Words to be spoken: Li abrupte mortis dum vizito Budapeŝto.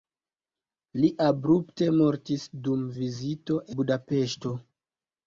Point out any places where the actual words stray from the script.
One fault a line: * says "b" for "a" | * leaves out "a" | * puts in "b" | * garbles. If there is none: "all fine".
all fine